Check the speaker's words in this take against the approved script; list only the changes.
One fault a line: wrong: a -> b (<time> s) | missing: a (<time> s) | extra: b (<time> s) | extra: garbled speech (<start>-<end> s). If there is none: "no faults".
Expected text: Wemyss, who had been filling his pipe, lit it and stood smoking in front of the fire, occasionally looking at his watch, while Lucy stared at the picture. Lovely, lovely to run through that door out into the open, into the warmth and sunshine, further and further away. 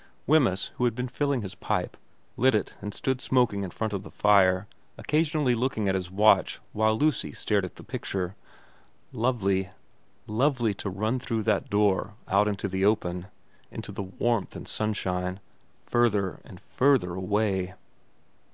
no faults